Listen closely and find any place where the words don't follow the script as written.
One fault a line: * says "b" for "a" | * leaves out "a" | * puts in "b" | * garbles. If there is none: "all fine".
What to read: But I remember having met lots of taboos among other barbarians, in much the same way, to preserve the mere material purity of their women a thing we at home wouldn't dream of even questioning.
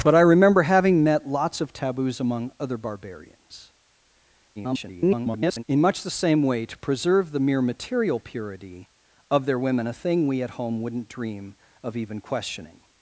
* garbles